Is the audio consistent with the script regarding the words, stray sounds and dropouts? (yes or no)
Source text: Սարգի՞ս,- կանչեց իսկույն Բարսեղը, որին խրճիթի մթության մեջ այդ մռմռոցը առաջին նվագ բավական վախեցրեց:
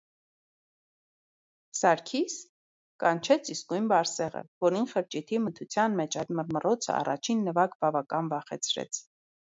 yes